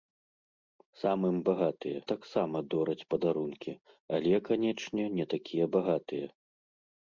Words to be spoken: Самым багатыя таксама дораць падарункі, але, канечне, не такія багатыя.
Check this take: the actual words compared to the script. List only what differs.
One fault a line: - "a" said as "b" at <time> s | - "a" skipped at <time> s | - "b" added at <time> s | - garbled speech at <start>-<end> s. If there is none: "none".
none